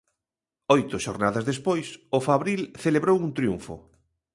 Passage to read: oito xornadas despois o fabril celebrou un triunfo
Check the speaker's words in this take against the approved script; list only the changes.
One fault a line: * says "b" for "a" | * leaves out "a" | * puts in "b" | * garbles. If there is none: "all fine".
all fine